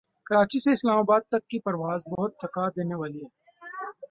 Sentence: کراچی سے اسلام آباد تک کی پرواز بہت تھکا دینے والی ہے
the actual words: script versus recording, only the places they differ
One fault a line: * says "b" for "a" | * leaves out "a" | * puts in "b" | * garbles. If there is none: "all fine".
all fine